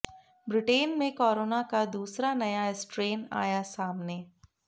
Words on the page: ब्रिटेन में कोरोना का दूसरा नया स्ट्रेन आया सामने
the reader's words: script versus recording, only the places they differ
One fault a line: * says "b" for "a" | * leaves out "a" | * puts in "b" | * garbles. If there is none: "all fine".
all fine